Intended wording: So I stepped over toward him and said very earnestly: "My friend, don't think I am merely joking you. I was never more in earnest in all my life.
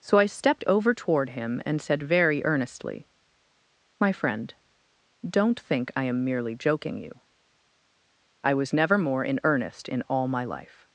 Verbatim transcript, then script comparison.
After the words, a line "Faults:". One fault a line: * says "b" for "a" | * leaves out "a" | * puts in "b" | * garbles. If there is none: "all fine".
So I stepped over toward him and said very earnestly: "My friend, don't think I am merely joking you. I was never more in earnest in all my life.
Faults:
all fine